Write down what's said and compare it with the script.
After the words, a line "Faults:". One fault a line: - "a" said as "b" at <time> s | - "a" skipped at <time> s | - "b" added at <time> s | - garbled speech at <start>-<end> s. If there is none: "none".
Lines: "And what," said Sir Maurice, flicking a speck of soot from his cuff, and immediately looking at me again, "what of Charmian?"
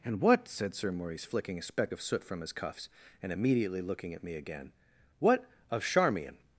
"And what," said Sir Maurice, flicking a speck of soot from his cuffs, and immediately looking at me again, "what of Charmian?"
Faults:
- "cuff" said as "cuffs" at 2.5 s